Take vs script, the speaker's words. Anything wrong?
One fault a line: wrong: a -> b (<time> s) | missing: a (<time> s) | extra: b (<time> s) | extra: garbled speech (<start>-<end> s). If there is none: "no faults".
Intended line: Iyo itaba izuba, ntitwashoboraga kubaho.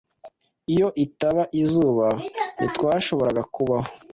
no faults